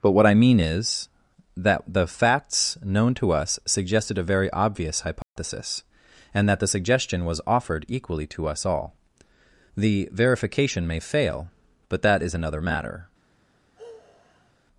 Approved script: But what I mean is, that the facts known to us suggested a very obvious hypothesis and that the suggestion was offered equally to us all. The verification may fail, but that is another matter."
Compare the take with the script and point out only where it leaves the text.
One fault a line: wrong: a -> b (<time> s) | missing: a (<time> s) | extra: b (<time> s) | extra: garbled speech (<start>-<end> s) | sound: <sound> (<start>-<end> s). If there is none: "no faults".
sound: dropout (5.2-5.4 s)
sound: sigh (13.8-14.5 s)